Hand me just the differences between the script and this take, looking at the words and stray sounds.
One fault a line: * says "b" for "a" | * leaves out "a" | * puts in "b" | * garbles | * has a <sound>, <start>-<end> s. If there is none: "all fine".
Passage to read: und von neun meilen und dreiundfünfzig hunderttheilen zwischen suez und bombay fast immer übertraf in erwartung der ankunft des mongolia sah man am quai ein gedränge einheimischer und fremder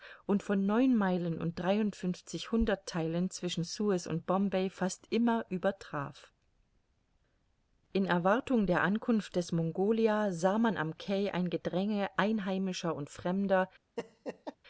* has a laugh, 14.0-14.6 s